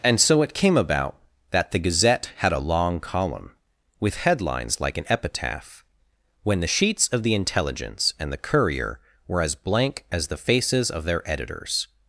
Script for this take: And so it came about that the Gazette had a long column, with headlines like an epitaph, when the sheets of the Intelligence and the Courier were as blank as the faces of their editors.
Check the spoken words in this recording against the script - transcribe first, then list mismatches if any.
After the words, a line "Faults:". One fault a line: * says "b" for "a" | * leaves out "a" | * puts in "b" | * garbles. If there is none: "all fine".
And so it came about that the Gazette had a long column, with headlines like an epitaph, when the sheets of the Intelligence and the Courier were as blank as the faces of their editors.
Faults:
all fine